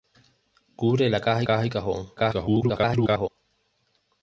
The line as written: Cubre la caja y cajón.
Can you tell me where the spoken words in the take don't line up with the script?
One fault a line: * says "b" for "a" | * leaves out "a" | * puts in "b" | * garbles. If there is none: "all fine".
* puts in "caja"
* garbles